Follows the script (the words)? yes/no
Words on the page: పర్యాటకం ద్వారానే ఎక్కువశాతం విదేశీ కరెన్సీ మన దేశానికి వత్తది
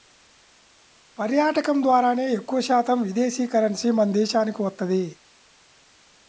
yes